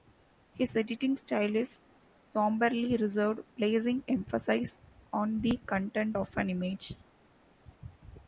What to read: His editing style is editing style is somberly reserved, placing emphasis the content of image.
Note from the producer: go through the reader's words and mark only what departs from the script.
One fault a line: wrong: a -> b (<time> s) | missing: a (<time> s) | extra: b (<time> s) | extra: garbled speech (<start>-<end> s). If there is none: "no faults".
missing: editing style is (1.8 s)
extra: on (5.1 s)
extra: an (6.4 s)